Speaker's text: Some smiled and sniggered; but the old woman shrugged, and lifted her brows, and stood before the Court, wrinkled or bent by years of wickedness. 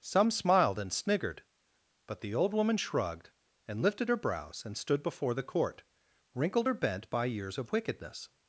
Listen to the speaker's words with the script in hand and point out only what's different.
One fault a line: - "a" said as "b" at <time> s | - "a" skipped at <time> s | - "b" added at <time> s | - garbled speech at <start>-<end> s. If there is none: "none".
none